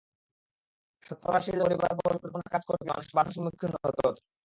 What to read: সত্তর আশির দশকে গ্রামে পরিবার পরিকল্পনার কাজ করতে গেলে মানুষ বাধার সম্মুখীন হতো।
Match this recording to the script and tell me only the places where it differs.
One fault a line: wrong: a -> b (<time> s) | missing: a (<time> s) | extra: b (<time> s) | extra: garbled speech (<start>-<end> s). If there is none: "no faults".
missing: দশকে গ্রামে (1.6 s)
missing: গেলে (2.9 s)